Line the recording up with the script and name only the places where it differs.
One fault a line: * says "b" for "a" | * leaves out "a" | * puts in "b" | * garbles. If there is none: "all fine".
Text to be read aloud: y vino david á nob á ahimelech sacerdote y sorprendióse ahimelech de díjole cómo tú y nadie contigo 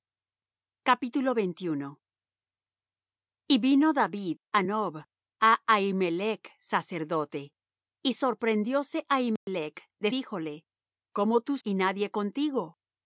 all fine